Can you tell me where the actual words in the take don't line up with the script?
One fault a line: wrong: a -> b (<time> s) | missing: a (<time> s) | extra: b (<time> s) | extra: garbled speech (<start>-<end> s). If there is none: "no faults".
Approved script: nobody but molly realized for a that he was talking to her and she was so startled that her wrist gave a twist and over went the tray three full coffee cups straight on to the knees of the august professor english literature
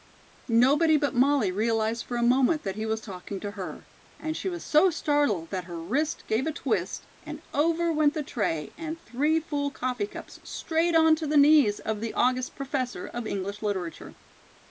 extra: moment (2.2 s)
extra: and (8.8 s)
extra: of (13.1 s)